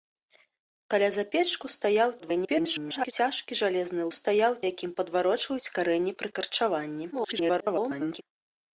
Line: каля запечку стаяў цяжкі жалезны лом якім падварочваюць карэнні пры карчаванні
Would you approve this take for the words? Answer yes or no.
no